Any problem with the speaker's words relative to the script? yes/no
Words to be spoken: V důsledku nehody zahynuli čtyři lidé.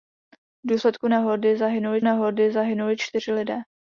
yes